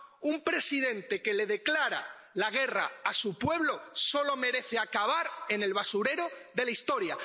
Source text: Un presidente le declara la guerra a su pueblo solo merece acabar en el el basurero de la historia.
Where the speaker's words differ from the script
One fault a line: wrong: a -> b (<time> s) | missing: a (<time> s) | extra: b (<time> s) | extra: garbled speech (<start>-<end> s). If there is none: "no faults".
extra: que (1.2 s)
missing: el (5.7 s)